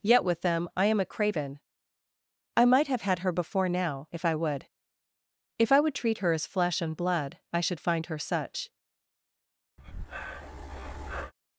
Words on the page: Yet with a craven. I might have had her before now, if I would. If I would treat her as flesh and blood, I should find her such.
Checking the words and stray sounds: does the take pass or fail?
fail